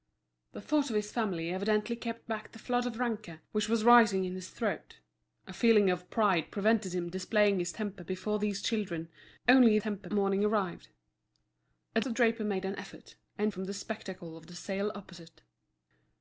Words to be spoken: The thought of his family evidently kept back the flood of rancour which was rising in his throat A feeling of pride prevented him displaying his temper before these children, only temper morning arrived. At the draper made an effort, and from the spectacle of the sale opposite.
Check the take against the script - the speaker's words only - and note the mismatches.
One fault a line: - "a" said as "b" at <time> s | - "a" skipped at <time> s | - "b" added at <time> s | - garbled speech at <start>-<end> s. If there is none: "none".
none